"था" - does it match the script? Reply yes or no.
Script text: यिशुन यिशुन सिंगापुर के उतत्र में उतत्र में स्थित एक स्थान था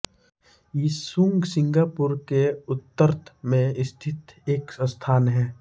no